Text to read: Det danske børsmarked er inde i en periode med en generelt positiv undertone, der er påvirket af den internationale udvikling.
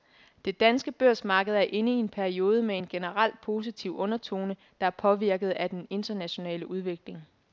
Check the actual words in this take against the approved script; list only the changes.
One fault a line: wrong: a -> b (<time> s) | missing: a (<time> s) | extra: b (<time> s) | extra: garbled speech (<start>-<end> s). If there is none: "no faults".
no faults